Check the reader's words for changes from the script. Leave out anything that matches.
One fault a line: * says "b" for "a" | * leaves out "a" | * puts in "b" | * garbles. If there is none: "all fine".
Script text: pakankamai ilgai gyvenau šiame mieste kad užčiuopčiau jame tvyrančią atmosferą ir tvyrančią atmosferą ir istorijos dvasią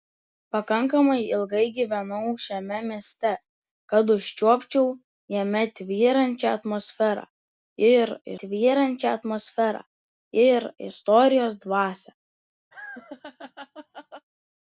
all fine